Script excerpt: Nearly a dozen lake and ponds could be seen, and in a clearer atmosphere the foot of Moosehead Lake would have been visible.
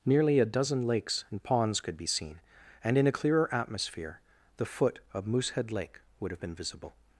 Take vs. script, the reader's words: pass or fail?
fail